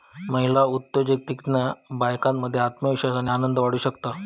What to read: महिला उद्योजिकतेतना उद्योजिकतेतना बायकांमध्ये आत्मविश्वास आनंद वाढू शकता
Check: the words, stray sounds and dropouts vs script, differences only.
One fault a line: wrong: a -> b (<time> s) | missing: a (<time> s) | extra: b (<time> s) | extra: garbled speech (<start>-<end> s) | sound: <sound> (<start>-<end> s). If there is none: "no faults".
missing: उद्योजिकतेतना (1.6 s)
extra: आणि (3.1 s)